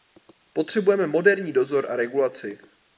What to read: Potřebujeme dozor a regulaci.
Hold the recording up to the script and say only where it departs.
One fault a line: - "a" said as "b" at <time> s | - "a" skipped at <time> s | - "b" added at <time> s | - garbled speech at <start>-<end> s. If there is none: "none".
- "moderní" added at 1.1 s